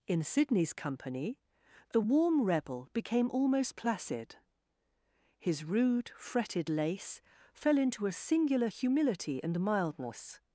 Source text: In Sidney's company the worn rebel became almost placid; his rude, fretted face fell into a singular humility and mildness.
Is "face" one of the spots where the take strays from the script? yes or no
yes